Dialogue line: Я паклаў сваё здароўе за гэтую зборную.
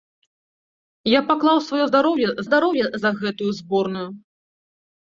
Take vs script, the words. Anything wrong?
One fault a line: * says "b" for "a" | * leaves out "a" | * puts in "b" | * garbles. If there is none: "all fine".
* puts in "здароўе"